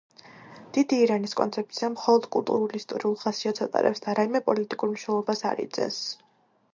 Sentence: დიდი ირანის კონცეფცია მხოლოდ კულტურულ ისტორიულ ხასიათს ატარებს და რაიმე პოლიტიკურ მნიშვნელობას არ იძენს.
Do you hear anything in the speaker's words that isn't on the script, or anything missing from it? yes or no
no